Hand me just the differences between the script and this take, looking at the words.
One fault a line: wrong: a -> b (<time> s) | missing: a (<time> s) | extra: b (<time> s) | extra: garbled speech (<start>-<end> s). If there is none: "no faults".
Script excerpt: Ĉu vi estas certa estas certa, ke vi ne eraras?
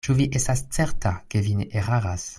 missing: estas certa (1.1 s)